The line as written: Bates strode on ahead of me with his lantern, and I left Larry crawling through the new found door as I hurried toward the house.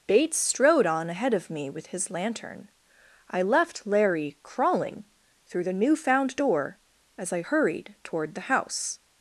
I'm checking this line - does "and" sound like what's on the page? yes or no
no